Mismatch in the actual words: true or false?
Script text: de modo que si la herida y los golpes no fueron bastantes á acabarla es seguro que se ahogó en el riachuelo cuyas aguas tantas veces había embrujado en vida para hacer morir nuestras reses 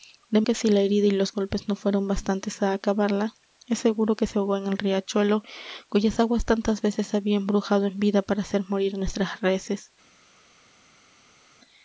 true